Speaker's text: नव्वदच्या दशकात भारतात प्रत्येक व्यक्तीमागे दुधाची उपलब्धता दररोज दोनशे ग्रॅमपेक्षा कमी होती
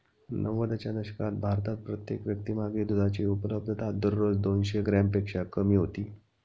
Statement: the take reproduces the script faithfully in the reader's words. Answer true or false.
true